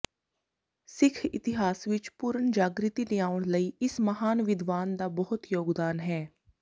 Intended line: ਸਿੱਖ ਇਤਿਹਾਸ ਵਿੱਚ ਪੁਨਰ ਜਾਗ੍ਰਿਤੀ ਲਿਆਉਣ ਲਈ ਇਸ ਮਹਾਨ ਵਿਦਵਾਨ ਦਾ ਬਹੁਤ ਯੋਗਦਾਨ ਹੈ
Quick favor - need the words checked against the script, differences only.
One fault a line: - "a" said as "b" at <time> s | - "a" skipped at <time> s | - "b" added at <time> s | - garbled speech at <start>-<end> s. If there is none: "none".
none